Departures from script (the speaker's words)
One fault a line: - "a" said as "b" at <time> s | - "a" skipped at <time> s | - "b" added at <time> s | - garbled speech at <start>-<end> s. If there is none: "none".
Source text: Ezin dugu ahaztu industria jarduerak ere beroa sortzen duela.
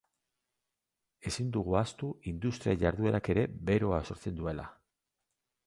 none